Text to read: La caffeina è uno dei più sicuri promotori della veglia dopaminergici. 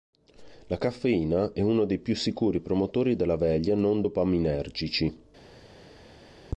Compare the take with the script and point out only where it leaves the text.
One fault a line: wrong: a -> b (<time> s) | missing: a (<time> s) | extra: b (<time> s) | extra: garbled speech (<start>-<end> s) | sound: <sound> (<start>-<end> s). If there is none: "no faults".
extra: non (3.7 s)